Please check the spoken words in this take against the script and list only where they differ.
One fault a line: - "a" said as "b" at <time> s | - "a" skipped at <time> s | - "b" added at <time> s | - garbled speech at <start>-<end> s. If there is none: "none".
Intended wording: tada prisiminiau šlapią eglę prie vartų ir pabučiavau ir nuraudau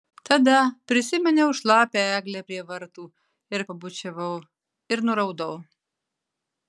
none